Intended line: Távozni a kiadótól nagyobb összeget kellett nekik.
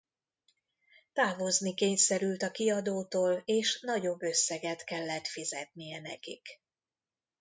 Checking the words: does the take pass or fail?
fail